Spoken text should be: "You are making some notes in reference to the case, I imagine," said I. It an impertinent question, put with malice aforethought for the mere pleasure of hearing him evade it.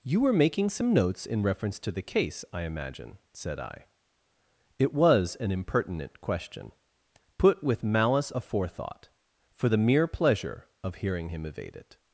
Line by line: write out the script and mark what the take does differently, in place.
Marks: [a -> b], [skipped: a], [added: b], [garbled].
"You [are -> were] making some notes in reference to the case, I imagine," said I. It [added: was] an impertinent question, put with malice aforethought for the mere pleasure of hearing him evade it.